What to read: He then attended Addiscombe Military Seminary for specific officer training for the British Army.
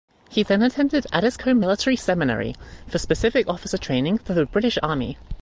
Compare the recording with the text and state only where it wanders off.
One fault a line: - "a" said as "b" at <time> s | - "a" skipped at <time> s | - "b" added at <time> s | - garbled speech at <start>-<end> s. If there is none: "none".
none